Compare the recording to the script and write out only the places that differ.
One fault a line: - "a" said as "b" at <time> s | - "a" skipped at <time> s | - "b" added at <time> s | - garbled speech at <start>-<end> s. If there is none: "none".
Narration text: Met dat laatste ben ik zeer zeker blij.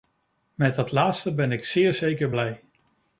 none